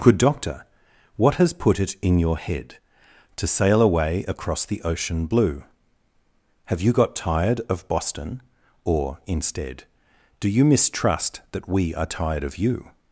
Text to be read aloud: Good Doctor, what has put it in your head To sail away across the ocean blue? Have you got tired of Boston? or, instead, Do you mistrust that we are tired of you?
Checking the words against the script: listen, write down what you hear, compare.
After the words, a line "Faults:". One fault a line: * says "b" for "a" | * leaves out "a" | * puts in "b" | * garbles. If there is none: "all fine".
Good Doctor, what has put it in your head To sail away across the ocean blue? Have you got tired of Boston? or, instead, Do you mistrust that we are tired of you?
Faults:
all fine